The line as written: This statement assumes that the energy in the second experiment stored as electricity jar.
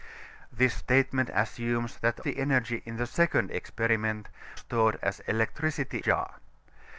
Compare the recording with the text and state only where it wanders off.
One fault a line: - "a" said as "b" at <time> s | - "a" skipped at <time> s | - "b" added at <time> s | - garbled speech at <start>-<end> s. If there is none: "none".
none